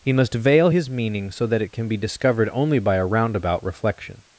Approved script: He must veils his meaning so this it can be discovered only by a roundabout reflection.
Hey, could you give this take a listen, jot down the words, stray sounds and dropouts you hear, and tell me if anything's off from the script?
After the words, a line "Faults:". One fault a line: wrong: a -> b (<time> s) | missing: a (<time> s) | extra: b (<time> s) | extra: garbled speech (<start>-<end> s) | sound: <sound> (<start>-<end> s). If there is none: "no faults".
He must veil his meaning so that it can be discovered only by a roundabout reflection.
Faults:
wrong: veils -> veil (0.3 s)
wrong: this -> that (1.5 s)